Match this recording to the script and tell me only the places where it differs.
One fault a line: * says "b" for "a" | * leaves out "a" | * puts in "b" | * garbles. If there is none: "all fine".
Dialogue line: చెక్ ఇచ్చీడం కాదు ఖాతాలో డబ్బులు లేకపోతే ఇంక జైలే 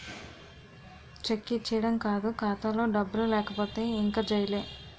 all fine